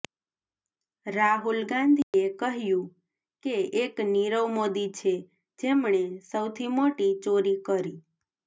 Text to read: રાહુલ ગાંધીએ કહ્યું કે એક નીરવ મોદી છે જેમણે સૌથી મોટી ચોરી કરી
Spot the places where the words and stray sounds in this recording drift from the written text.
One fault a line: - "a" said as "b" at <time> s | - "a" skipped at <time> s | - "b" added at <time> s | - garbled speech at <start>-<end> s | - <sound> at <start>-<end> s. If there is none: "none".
- dropout at 2.0-2.1 s